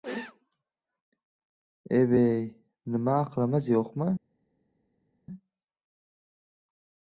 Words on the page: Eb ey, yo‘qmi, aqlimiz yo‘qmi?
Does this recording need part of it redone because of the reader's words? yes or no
yes